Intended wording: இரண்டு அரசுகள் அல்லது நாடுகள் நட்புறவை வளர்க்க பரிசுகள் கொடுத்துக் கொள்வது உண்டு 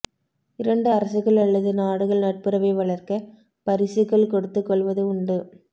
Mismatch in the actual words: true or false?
false